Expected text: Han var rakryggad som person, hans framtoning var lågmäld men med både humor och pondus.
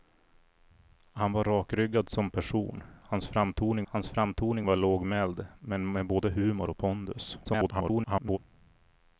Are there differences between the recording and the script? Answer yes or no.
yes